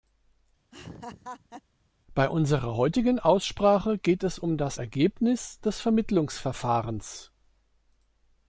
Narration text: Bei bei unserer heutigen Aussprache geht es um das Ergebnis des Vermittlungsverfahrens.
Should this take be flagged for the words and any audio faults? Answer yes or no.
yes